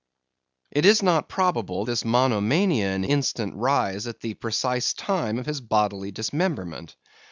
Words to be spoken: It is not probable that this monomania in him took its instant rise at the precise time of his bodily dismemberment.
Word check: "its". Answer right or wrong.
wrong